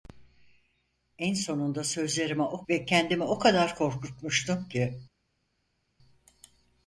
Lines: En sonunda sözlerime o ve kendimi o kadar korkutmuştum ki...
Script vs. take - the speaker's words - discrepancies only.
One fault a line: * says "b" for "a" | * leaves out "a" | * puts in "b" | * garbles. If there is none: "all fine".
all fine